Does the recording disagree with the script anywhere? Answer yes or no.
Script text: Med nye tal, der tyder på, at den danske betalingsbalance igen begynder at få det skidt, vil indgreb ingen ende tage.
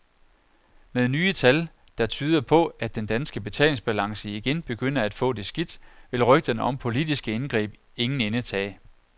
yes